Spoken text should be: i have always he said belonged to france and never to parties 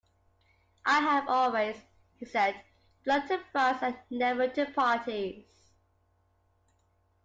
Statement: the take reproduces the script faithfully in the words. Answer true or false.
true